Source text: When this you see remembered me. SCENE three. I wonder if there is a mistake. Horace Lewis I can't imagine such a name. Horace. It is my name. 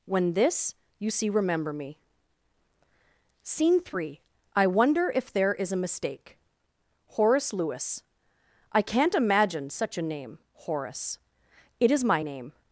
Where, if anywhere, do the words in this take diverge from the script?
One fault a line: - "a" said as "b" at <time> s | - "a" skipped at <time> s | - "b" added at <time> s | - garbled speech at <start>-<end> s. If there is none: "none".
- "remembered" said as "remember" at 1.3 s